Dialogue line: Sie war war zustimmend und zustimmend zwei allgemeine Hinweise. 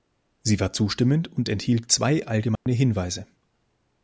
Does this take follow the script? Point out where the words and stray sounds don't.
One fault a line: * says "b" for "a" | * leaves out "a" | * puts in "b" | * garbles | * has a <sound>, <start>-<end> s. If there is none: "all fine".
* leaves out "war"
* says "enthielt" for "zustimmend"
* has a dropout, 2.6-2.7 s